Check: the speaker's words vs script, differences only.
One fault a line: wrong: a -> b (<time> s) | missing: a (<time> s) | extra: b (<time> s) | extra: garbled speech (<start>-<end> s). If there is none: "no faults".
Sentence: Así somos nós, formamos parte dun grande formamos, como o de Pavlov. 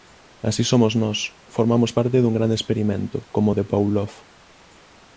wrong: formamos -> experimento (2.6 s)